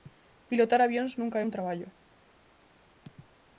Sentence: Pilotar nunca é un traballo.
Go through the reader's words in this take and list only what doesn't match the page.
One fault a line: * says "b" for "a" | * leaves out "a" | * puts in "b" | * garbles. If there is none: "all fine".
* puts in "avións"